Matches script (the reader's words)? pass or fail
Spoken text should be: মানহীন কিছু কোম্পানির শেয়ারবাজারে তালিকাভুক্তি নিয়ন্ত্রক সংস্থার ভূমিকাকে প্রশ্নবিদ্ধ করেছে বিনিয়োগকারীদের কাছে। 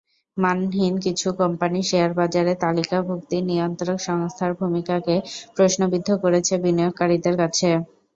pass